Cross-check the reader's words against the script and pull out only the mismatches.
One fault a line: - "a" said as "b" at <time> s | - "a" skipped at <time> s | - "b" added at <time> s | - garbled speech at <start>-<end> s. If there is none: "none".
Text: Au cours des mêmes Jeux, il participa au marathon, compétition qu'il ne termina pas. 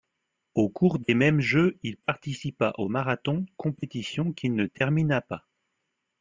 none